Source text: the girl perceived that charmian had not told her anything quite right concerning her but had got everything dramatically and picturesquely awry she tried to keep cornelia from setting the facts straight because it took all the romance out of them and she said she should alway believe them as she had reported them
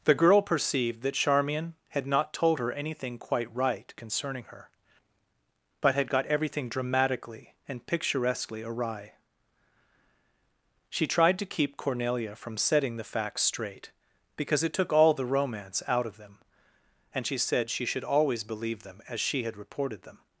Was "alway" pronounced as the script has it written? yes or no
no